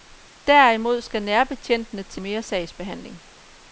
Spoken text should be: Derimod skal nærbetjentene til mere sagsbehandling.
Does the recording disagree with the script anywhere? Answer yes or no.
no